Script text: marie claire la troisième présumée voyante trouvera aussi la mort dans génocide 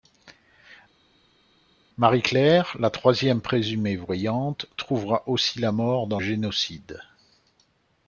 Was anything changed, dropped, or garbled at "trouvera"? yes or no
no